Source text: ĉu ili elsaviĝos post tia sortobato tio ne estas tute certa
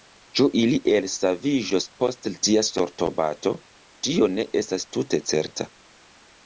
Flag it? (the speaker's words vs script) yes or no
no